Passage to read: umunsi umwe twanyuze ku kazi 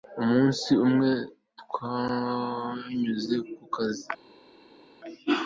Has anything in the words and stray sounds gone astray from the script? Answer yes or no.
no